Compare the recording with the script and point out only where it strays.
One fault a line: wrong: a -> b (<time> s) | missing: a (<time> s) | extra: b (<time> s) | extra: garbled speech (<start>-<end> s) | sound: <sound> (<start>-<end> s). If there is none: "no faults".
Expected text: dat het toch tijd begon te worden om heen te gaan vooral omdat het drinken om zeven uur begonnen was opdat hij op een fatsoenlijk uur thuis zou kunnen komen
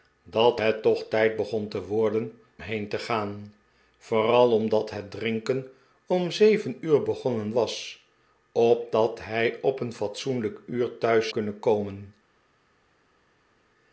missing: om (2.4 s)
missing: zou (11.3 s)